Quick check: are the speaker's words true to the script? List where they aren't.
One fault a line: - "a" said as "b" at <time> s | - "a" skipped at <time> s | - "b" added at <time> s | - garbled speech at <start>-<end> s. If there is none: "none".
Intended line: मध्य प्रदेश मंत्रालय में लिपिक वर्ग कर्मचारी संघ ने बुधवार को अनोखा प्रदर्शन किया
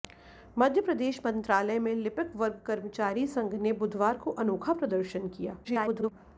- garbled speech at 5.6-6.1 s